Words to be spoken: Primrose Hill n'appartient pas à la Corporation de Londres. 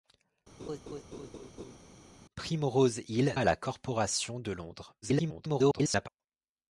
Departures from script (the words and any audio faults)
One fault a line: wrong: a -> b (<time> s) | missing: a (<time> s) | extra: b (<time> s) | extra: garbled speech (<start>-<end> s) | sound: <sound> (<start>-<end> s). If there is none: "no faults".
sound: laugh (0.6-1.8 s)
missing: n'appartient pas (3.4 s)
extra: garbled speech (5.0-6.1 s)